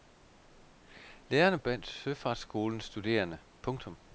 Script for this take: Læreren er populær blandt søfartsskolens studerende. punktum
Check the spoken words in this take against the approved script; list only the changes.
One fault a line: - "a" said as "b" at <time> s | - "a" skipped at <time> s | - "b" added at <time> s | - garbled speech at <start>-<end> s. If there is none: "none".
- "populær" skipped at 1.6 s